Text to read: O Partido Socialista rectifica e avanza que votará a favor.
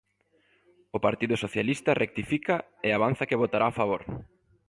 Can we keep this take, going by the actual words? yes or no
yes